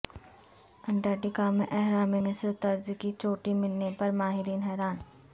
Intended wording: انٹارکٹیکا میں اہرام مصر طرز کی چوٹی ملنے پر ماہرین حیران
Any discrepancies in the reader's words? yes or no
no